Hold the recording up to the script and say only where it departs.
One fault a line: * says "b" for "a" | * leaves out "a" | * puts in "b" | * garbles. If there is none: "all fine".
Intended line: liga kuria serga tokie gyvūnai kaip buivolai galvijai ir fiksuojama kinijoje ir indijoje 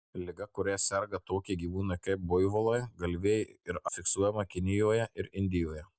all fine